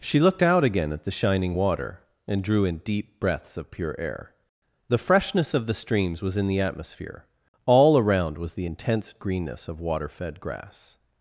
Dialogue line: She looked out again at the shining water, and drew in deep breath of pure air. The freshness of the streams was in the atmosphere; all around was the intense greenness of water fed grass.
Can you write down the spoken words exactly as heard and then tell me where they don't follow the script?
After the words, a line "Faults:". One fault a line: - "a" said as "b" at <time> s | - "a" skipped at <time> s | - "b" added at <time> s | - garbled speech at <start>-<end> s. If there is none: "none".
She looked out again at the shining water, and drew in deep breaths of pure air. The freshness of the streams was in the atmosphere; all around was the intense greenness of water fed grass.
Faults:
- "breath" said as "breaths" at 3.2 s